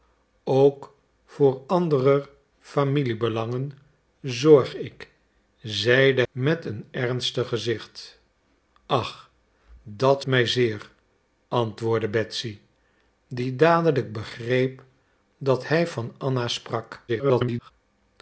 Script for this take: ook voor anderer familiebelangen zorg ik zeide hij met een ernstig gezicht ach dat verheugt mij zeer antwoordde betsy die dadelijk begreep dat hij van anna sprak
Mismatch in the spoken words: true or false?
true